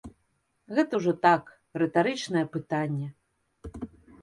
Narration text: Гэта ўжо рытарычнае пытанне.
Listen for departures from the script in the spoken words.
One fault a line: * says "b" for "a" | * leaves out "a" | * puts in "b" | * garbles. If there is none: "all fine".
* puts in "так"